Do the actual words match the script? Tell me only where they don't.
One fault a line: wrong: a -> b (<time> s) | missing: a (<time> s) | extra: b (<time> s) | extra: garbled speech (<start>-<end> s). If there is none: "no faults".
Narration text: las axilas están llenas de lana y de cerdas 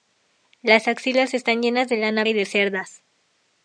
no faults